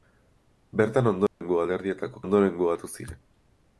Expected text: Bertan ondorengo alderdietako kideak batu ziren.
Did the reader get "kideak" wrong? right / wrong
wrong